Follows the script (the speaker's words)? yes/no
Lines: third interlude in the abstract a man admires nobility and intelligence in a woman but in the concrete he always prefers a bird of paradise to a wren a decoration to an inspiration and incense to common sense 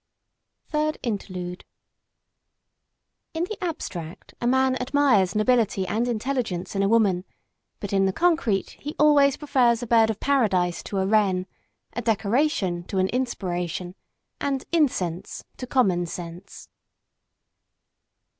yes